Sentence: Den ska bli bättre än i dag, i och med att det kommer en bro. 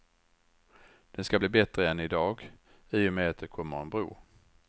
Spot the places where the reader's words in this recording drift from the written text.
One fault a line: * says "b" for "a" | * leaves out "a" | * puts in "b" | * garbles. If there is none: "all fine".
all fine